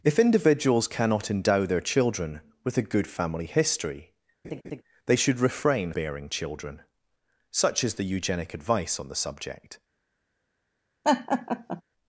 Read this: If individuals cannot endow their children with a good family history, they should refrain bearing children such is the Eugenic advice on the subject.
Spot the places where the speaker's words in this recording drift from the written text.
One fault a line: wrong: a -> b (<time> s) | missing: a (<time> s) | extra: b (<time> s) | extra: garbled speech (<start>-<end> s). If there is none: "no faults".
no faults